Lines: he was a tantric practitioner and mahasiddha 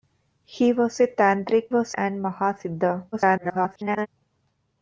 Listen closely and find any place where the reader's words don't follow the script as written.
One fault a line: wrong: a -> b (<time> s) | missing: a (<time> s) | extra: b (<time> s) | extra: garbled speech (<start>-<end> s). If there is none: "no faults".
wrong: practitioner -> was (1.7 s)
extra: garbled speech (3.1-4.1 s)